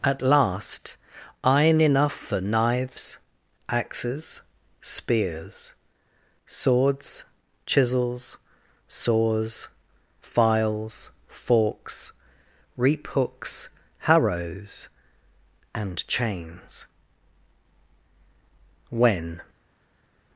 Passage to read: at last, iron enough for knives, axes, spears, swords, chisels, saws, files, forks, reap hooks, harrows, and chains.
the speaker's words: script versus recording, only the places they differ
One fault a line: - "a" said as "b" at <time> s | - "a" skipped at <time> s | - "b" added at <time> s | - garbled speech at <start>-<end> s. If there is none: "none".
- "When" added at 18.9 s